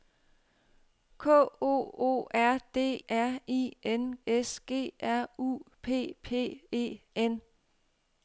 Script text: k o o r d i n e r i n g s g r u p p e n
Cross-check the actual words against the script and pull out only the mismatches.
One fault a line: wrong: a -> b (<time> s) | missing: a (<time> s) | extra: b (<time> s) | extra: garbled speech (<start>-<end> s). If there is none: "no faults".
missing: i n e (3.0 s)
missing: g (4.2 s)